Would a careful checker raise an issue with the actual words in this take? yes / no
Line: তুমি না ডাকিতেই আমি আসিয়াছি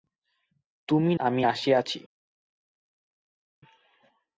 yes